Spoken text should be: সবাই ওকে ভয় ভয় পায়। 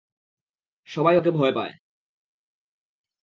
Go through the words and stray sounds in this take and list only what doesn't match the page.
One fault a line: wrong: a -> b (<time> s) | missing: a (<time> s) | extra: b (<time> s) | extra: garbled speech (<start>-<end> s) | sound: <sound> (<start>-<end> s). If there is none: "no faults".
missing: ভয় (1.5 s)